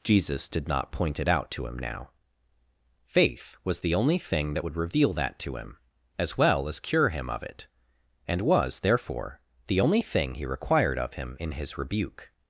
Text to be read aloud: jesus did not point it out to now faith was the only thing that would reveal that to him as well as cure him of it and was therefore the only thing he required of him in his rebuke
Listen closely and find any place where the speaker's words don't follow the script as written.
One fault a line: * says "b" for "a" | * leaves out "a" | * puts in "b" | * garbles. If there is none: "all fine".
* puts in "him"